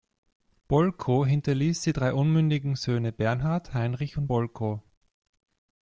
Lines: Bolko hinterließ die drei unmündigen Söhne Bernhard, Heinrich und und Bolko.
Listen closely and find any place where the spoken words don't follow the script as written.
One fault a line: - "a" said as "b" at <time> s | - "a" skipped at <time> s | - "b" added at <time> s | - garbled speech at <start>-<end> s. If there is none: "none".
- "und" skipped at 4.3 s